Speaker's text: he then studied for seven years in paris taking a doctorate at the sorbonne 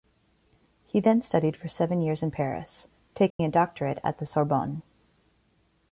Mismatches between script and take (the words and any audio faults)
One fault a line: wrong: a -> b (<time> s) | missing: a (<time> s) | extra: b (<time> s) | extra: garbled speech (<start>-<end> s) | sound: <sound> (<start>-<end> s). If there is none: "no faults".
sound: dropout (3.3-3.4 s)